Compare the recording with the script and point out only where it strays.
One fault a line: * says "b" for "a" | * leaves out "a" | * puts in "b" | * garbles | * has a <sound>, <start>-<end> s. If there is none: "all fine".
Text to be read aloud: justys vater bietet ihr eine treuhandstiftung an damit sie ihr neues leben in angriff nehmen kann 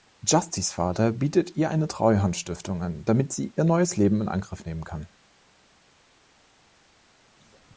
all fine